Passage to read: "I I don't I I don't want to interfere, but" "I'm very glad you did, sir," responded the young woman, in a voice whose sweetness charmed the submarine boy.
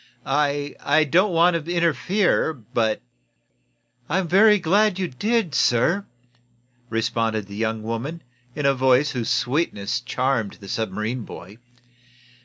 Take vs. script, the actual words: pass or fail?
fail